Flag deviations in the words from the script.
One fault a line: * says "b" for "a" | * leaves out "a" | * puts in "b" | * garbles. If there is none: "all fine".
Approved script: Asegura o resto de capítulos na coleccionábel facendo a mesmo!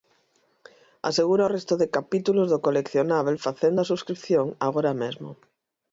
* says "do" for "na"
* puts in "subscrición agora"